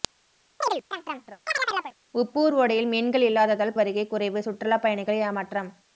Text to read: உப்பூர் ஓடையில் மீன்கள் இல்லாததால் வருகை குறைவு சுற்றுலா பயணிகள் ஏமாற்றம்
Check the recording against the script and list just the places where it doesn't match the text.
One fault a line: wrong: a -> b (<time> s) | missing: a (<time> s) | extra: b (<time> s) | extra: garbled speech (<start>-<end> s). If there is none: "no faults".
no faults